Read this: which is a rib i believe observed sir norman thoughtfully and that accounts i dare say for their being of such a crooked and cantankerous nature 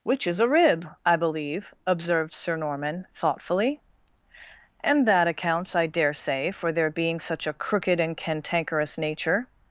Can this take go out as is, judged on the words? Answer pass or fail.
fail